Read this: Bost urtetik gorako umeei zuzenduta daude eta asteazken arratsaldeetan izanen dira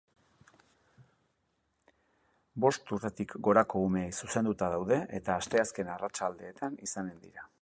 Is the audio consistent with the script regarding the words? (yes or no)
yes